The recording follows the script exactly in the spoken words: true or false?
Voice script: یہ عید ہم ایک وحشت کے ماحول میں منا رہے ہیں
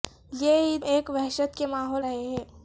false